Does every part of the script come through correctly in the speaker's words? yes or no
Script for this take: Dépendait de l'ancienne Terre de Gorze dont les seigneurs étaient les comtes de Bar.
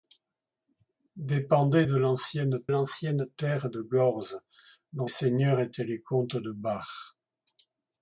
no